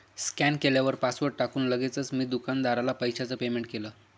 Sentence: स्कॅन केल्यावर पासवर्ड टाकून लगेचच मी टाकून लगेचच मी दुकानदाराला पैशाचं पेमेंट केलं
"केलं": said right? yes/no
yes